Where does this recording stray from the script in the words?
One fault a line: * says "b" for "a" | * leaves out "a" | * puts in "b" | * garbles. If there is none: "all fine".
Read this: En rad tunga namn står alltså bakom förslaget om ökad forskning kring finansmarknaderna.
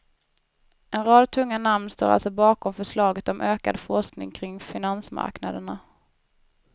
all fine